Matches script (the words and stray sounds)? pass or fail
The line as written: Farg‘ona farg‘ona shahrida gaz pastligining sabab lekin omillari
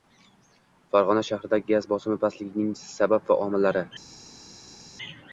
fail